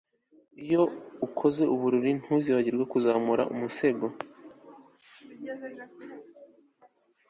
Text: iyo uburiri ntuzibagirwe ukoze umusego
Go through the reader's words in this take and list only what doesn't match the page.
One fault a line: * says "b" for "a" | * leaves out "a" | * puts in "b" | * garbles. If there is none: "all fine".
* puts in "ukoze"
* says "kuzamura" for "ukoze"